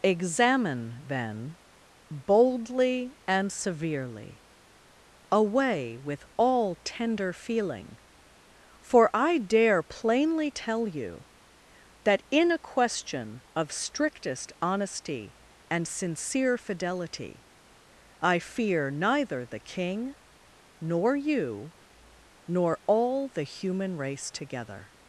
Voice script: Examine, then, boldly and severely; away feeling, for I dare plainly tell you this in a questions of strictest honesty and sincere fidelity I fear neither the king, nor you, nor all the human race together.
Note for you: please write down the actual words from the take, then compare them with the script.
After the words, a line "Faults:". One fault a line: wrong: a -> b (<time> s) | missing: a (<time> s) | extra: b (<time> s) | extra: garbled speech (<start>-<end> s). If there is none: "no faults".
Examine, then, boldly and severely; away with all tender feeling, for I dare plainly tell you that in a question of strictest honesty and sincere fidelity I fear neither the king, nor you, nor all the human race together.
Faults:
extra: with all tender (6.0 s)
wrong: this -> that (12.0 s)
wrong: questions -> question (12.6 s)